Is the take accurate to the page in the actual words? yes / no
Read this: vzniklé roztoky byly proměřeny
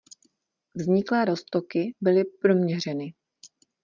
yes